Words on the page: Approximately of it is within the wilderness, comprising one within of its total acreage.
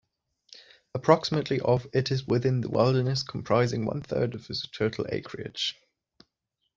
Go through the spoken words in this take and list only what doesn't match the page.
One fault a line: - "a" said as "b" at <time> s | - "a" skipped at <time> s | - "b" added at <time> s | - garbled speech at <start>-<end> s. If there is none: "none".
- "within" said as "third" at 4.0 s